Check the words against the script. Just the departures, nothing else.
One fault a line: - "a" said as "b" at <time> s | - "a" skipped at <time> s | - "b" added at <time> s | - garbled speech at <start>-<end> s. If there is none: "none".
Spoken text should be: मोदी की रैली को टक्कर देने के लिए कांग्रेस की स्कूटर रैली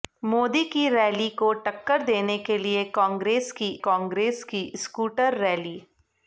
- "कांग्रेस की" added at 3.8 s